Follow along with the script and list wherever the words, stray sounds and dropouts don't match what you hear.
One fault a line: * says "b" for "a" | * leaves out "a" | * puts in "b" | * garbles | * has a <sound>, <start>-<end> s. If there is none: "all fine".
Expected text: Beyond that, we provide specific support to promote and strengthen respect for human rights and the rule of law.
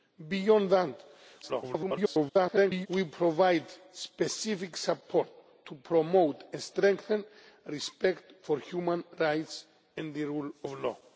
* garbles